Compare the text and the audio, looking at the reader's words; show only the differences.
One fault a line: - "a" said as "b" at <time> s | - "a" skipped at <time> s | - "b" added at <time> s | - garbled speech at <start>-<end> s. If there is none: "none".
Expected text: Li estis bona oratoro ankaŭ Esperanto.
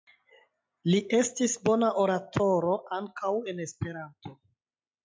- "en" added at 3.5 s